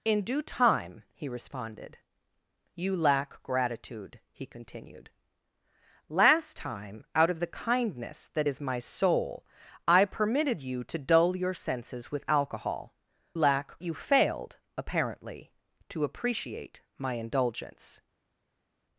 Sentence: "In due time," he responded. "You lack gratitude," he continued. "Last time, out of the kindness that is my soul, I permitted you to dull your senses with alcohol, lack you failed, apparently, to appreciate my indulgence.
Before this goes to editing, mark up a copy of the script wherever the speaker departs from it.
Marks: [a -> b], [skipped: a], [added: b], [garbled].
"In due time," he responded. "You lack gratitude," he continued. "Last time, out of the kindness that is my soul, I permitted you to dull your senses with alcohol, lack you failed, apparently, to appreciate my indulgence.